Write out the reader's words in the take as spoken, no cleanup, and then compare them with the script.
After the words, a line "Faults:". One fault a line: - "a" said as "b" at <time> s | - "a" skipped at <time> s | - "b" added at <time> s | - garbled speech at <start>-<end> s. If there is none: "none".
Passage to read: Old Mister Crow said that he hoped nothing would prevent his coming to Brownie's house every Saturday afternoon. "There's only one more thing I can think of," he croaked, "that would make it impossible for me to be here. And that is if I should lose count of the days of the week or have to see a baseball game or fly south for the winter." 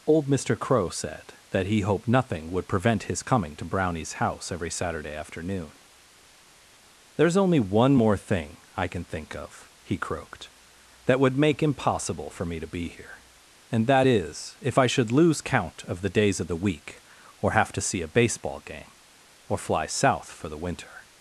Old Mister Crow said that he hoped nothing would prevent his coming to Brownie's house every Saturday afternoon. "There's only one more thing I can think of," he croaked, "that would make impossible for me to be here. And that is if I should lose count of the days of the week or have to see a baseball game or fly south for the winter."
Faults:
- "it" skipped at 11.6 s